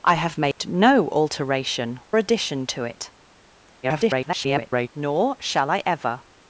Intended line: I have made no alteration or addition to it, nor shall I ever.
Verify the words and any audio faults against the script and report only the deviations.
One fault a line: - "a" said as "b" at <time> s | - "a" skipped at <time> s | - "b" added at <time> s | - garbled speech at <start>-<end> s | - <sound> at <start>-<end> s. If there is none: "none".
- dropout at 0.5-0.6 s
- "or" skipped at 2.0 s
- garbled speech at 3.8-4.9 s